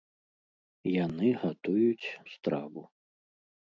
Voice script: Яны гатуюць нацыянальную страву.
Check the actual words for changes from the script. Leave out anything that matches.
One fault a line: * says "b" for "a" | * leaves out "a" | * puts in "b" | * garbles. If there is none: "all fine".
* leaves out "нацыянальную"